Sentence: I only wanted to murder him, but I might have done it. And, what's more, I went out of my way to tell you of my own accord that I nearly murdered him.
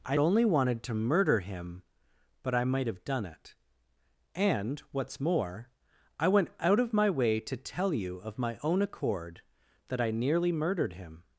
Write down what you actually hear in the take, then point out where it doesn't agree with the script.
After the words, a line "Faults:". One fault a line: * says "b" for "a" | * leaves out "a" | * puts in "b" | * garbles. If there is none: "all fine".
I only wanted to murder him, but I might have done it. And, what's more, I went out of my way to tell you of my own accord that I nearly murdered him.
Faults:
all fine